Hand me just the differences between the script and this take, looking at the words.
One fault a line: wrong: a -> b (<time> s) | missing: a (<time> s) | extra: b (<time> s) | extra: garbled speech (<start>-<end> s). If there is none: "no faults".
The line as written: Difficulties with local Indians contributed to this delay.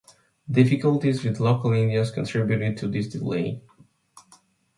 no faults